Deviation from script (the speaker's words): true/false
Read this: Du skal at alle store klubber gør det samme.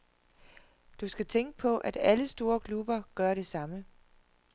true